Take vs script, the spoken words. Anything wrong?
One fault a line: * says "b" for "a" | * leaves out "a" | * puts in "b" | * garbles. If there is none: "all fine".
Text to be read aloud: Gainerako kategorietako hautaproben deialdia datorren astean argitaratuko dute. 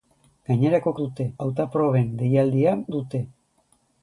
* says "dute" for "kategorietako"
* leaves out "datorren astean argitaratuko"